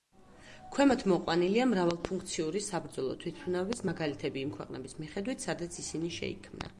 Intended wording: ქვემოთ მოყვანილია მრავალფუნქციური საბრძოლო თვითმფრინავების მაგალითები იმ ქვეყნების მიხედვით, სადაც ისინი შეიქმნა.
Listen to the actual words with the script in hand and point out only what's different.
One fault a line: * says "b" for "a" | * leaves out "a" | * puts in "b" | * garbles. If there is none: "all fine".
all fine